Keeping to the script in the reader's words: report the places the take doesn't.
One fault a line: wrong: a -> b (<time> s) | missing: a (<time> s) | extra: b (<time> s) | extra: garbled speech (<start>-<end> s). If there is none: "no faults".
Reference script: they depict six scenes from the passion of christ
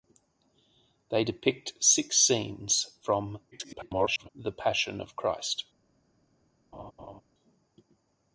extra: garbled speech (3.5-4.3 s)